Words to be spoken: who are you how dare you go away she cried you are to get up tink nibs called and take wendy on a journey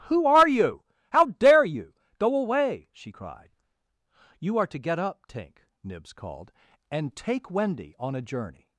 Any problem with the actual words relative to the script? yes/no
no